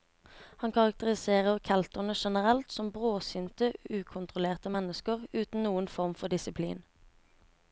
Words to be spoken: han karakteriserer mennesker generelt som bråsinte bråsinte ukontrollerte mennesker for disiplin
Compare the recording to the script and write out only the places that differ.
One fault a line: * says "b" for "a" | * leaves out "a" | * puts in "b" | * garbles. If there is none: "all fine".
* says "kelterne" for "mennesker"
* leaves out "bråsinte"
* puts in "uten noen form"